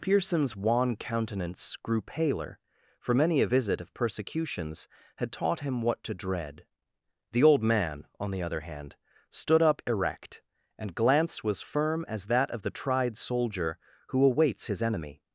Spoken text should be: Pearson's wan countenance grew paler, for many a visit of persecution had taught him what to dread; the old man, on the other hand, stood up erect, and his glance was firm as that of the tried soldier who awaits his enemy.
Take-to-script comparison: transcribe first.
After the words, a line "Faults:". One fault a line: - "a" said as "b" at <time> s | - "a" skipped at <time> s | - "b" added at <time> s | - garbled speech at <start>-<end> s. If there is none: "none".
Pearson's wan countenance grew paler, for many a visit of persecutions had taught him what to dread; the old man, on the other hand, stood up erect, and glance was firm as that of the tried soldier who awaits his enemy.
Faults:
- "persecution" said as "persecutions" at 3.9 s
- "his" skipped at 10.9 s